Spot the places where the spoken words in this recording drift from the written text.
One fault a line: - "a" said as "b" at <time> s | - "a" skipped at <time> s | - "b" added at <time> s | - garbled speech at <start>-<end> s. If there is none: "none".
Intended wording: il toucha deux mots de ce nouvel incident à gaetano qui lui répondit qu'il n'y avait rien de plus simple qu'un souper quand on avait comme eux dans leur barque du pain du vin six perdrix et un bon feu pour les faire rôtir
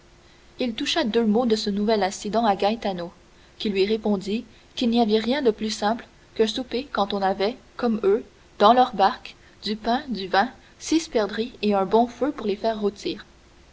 none